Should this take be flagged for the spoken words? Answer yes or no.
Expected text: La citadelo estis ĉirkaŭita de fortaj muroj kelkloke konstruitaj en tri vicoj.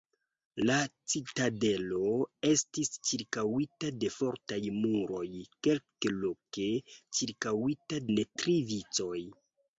yes